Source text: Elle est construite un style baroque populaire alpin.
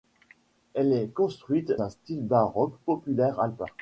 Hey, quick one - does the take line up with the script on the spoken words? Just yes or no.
yes